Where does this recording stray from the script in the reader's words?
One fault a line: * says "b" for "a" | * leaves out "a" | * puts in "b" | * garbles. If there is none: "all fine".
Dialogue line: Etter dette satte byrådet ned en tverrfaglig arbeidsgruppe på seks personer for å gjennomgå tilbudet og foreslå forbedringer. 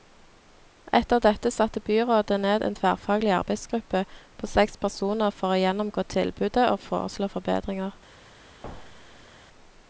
all fine